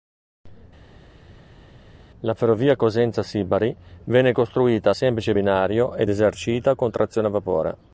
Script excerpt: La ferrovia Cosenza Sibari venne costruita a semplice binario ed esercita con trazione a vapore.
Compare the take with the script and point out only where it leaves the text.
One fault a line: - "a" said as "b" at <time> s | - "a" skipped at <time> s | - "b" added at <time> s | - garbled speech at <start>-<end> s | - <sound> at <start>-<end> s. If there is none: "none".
none